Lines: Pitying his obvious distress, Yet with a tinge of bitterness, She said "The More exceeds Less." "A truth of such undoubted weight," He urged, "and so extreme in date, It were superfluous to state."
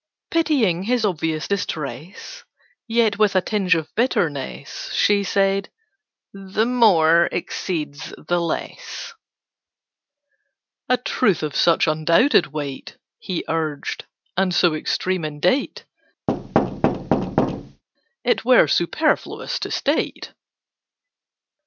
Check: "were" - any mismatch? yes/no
no